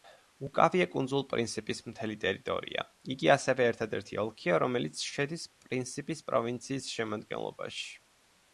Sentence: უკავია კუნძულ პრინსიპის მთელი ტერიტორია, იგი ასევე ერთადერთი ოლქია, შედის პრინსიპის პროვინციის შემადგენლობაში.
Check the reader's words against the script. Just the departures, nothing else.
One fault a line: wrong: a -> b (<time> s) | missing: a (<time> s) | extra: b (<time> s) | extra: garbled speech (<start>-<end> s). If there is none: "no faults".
extra: რომელიც (4.7 s)